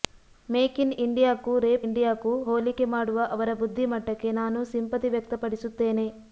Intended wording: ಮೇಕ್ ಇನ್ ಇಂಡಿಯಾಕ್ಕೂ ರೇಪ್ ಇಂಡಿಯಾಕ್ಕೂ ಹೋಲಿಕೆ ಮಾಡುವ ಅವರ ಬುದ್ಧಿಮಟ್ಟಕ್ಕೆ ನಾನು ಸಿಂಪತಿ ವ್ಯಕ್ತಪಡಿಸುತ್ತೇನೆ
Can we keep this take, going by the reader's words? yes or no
yes